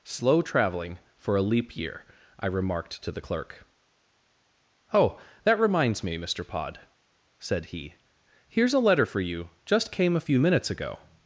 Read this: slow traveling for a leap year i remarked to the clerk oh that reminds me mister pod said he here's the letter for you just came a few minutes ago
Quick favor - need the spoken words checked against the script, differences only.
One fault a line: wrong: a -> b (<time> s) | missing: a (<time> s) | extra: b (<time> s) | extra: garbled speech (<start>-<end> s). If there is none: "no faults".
wrong: the -> a (8.7 s)